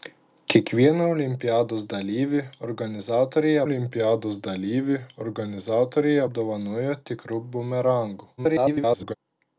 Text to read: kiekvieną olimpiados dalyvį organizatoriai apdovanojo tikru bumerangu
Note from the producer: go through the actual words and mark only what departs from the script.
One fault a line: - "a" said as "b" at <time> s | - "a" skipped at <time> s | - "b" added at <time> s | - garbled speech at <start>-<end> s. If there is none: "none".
- "olimpiados dalyvį organizatoriai" added at 3.7 s
- garbled speech at 8.4-9.1 s